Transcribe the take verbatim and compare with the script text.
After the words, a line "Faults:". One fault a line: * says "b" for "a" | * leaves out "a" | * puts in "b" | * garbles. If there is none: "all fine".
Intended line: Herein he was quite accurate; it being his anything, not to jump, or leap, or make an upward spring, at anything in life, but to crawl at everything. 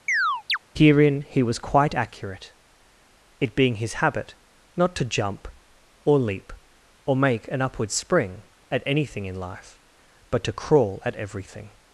Herein he was quite accurate; it being his habit, not to jump, or leap, or make an upward spring, at anything in life, but to crawl at everything.
Faults:
* says "habit" for "anything"